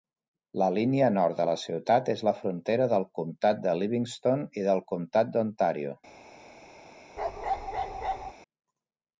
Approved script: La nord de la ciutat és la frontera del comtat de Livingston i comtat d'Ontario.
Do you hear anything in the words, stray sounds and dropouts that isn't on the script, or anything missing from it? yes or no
yes